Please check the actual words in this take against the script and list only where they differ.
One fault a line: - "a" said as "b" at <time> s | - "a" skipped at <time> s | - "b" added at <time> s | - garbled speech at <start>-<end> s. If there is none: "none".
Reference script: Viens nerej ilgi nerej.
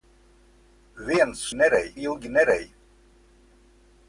none